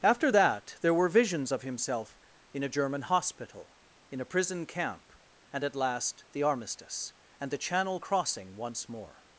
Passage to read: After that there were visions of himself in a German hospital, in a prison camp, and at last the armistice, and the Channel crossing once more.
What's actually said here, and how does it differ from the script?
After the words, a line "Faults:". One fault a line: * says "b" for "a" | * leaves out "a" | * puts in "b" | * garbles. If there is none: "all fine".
After that there were visions of himself in a German hospital, in a prison camp, and at last the armistice, and the Channel crossing once more.
Faults:
all fine